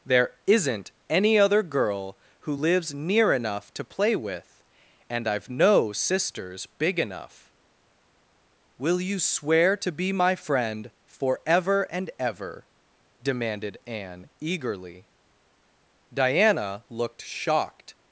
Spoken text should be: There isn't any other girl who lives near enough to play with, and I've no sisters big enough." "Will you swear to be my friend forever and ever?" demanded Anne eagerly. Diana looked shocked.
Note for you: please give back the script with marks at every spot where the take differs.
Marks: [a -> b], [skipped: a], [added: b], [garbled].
There isn't any other girl who lives near enough to play with, and I've no sisters big enough." "Will you swear to be my friend forever and ever?" demanded Anne eagerly. Diana looked shocked.